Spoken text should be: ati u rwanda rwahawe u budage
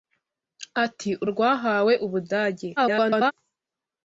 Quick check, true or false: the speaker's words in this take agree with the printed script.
false